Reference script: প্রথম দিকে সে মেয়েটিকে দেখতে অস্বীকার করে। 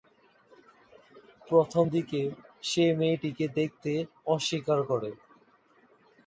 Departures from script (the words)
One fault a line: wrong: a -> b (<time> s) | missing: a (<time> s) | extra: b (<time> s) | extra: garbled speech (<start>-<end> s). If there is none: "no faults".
no faults